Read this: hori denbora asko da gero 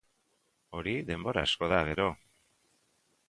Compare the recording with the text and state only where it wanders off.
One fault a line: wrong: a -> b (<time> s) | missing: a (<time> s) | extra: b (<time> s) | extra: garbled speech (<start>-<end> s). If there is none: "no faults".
no faults